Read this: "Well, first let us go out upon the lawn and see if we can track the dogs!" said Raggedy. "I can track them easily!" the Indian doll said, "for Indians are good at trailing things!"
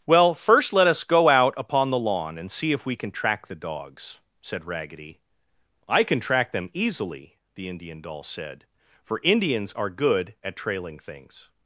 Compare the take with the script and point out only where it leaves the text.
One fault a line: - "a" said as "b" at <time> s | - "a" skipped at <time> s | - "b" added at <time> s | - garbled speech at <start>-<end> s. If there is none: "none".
none